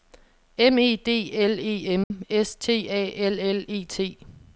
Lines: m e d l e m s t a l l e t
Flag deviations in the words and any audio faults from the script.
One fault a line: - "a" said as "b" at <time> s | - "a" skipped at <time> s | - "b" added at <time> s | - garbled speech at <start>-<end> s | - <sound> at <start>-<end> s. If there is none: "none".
- dropout at 2.0-2.1 s